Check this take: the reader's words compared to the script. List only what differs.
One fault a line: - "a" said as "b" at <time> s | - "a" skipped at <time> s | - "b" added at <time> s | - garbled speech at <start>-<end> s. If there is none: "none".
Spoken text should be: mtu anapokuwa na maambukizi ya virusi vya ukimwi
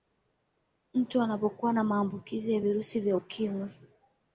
none